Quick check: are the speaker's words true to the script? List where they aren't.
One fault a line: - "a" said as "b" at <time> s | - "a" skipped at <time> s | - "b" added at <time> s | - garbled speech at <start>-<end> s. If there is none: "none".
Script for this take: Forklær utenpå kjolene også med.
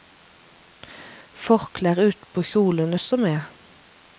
none